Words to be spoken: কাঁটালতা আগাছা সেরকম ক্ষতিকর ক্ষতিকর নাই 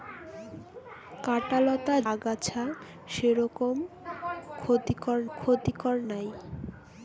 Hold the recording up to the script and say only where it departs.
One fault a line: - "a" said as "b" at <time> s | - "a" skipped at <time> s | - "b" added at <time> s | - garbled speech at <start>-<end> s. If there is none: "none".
none